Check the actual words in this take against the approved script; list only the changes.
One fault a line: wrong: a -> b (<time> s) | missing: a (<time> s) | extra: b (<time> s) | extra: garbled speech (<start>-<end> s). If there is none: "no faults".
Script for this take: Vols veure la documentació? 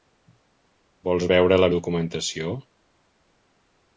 no faults